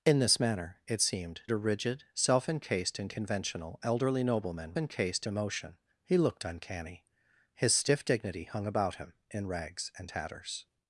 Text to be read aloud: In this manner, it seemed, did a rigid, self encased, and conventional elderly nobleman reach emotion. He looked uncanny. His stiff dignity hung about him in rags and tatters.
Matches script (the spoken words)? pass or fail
fail